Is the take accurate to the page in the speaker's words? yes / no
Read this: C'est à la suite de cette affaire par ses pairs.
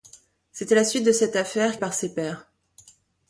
yes